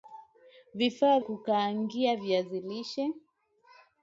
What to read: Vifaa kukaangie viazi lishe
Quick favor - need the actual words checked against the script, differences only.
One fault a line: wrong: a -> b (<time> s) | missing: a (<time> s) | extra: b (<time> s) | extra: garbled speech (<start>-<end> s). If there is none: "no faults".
no faults